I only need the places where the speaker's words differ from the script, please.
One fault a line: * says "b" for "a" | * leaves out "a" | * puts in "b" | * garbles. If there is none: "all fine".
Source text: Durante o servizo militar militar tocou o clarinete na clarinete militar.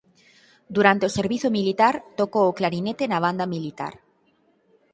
* leaves out "militar"
* says "banda" for "clarinete"